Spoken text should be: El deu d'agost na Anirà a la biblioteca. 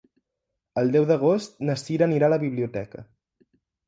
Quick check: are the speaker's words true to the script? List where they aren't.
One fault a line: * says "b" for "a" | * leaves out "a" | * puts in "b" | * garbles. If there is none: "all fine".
* puts in "Cira"